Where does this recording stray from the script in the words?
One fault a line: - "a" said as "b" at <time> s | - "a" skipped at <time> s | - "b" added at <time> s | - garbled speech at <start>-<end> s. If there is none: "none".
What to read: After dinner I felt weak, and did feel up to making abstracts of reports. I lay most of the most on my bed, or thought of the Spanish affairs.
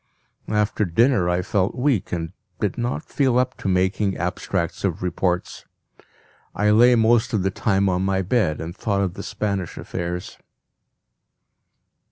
- "not" added at 2.8 s
- "most" said as "time" at 7.5 s
- "or" said as "and" at 8.6 s